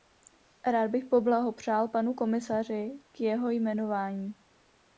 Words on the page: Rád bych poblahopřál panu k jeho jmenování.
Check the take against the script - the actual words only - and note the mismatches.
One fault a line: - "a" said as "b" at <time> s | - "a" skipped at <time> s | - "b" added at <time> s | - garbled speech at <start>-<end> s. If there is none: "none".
- "komisaři" added at 2.1 s